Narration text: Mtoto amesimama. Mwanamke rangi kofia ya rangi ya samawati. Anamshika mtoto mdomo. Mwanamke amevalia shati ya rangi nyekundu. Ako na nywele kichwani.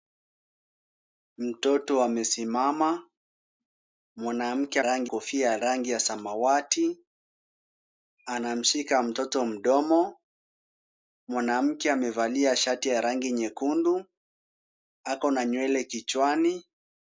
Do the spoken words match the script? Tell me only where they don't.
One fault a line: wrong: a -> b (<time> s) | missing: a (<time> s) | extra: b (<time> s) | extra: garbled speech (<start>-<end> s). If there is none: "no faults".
no faults